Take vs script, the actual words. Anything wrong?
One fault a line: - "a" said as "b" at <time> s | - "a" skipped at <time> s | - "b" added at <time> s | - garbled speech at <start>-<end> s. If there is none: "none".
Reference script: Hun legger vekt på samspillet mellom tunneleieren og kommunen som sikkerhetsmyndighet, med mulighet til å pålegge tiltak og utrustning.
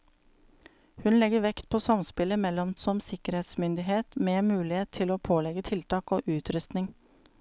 - "tunneleieren og kommunen" skipped at 2.7 s